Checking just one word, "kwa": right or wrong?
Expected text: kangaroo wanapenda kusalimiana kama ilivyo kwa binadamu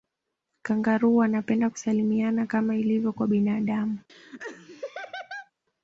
right